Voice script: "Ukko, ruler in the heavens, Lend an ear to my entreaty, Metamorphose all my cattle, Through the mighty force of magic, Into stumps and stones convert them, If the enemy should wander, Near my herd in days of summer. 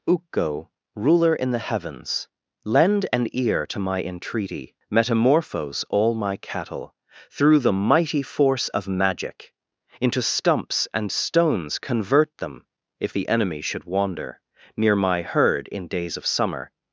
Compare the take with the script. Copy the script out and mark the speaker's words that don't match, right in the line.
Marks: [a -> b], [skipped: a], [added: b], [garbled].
"Ukko, ruler in the heavens, Lend an ear to my entreaty, Metamorphose all my cattle, Through the mighty force of magic, Into stumps and stones convert them, If the enemy should wander, Near my herd in days of summer.